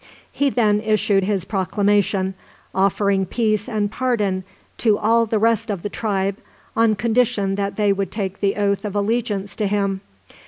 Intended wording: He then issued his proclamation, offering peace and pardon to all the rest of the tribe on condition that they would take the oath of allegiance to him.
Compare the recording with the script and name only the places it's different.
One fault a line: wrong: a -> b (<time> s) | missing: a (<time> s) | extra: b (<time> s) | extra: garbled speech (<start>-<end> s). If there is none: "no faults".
no faults